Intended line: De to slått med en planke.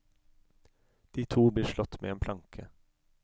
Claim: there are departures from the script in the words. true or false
true